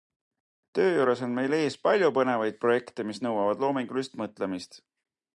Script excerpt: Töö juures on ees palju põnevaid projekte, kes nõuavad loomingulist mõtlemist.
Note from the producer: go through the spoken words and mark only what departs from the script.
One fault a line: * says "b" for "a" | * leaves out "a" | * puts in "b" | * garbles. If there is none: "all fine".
* puts in "meil"
* says "mis" for "kes"